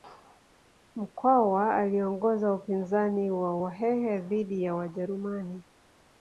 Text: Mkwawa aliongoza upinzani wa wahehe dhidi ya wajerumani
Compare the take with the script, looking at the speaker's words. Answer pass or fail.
pass